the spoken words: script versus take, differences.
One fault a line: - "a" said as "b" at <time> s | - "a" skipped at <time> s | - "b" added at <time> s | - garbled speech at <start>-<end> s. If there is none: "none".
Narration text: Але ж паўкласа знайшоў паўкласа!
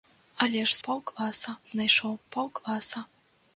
none